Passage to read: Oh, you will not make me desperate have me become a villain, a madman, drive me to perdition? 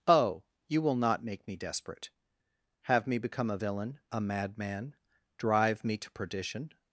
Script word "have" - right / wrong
right